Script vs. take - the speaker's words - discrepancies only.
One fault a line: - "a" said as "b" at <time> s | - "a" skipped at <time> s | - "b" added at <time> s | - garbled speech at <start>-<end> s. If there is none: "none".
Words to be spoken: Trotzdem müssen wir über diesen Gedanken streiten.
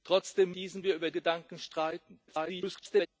- "müssen" said as "diesen" at 0.5 s
- "diesen" skipped at 1.1 s
- garbled speech at 2.3-3.1 s